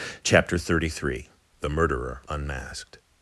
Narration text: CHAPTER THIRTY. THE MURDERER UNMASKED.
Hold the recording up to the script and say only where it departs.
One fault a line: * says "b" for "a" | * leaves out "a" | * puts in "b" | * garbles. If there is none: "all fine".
* puts in "THREE"